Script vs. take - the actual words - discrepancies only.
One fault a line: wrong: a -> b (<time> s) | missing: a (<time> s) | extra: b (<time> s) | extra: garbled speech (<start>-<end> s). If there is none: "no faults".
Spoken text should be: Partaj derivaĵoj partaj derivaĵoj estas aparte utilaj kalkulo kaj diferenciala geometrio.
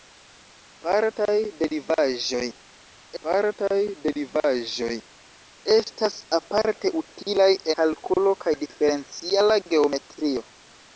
no faults